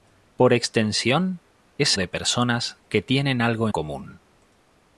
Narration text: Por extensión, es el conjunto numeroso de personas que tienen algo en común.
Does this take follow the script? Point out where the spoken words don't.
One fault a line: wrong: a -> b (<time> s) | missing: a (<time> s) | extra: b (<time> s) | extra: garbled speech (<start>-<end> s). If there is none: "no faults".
missing: el conjunto numeroso (2.0 s)
missing: en (3.7 s)